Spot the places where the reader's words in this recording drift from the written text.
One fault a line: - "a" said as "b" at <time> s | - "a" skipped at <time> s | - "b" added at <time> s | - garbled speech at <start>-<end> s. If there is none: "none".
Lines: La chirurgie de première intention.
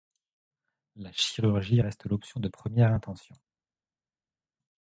- "reste l'option" added at 1.8 s